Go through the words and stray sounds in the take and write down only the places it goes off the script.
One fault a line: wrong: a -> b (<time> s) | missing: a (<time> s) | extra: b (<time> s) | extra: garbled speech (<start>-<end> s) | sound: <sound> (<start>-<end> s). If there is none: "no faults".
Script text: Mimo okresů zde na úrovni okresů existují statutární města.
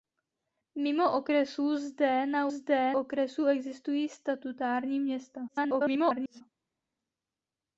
wrong: úrovni -> zde (2.5 s)
extra: garbled speech (5.5-6.4 s)